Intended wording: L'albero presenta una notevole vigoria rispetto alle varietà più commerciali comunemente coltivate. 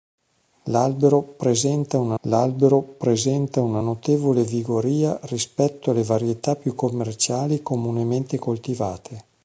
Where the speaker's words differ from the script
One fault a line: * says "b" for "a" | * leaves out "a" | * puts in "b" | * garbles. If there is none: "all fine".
* puts in "l'albero presenta una"